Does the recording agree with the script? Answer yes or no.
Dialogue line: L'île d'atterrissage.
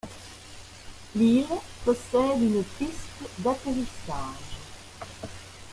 no